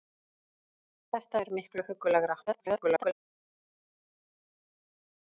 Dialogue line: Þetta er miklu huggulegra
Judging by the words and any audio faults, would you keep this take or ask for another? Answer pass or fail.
fail